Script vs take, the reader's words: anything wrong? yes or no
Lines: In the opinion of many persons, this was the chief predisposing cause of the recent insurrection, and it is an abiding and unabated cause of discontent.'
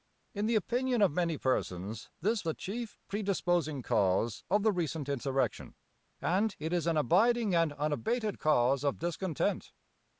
yes